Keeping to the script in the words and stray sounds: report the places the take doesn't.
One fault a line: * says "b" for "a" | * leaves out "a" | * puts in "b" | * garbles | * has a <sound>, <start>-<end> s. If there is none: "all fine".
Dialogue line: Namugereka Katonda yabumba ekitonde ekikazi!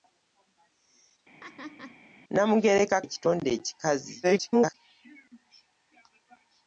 * has a laugh, 1.4-2.0 s
* leaves out "Katonda yabumba"
* garbles